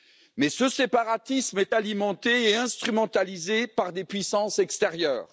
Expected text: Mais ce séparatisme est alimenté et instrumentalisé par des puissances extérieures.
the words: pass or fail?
pass